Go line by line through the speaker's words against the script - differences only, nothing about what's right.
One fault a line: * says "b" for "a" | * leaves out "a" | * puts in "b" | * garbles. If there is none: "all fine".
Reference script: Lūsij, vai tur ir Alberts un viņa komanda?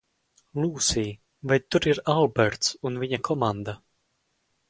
all fine